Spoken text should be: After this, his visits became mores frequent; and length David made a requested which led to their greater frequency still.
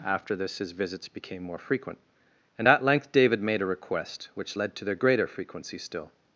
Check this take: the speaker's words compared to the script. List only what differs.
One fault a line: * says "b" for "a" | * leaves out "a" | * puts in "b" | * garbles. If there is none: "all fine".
* says "more" for "mores"
* puts in "at"
* says "request" for "requested"